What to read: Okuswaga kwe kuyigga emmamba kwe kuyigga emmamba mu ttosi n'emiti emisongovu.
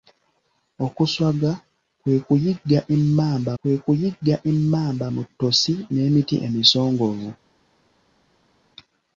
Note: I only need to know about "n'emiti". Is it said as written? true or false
true